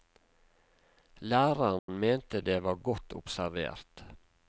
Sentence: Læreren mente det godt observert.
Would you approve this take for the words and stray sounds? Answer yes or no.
no